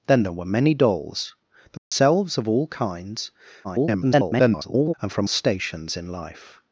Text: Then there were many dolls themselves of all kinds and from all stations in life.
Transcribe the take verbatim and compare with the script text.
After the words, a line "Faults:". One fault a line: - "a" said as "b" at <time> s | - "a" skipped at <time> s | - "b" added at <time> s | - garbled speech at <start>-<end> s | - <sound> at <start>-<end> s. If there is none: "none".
Then there were many dolls themselves of all kinds [garbled] and from stations in life.
Faults:
- dropout at 1.8-1.9 s
- garbled speech at 3.6-4.9 s
- "all" skipped at 5.3 s